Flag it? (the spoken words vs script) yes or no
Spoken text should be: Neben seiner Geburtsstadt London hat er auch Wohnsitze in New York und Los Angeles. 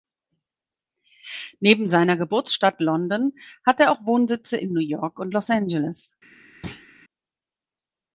no